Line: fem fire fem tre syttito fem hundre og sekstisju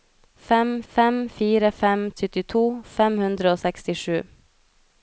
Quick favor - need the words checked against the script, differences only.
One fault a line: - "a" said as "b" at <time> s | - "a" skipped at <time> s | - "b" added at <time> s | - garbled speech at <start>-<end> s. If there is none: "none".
- "fem" added at 0.9 s
- "tre" skipped at 2.0 s